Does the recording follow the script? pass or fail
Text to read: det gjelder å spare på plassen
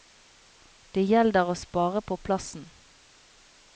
pass